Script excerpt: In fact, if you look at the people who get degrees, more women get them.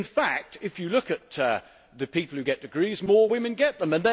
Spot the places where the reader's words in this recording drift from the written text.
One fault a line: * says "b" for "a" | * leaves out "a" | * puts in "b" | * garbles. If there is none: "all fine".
all fine